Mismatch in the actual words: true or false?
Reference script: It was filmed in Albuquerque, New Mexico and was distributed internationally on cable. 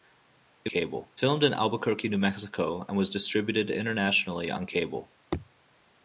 true